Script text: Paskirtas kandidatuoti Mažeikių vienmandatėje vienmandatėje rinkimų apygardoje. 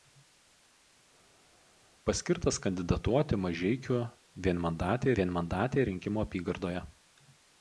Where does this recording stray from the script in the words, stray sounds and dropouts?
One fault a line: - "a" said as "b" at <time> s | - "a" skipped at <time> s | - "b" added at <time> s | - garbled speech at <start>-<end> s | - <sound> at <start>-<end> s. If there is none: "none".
none